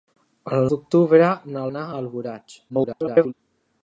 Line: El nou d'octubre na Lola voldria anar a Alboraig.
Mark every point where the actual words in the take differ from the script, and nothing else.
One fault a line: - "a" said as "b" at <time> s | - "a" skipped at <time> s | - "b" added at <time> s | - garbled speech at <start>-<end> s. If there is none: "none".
- "nou" skipped at 0.6 s
- "Lola voldria" skipped at 1.6 s
- garbled speech at 2.7-3.3 s